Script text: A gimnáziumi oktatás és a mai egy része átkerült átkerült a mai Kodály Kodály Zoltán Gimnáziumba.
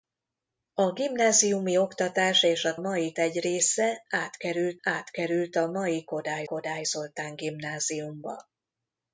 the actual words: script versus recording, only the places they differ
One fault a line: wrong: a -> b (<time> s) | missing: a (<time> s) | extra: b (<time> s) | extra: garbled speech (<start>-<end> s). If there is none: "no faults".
no faults